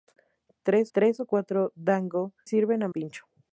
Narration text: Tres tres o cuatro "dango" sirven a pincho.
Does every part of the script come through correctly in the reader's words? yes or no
yes